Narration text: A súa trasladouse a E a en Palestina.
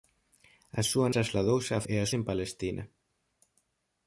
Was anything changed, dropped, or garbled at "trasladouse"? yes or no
no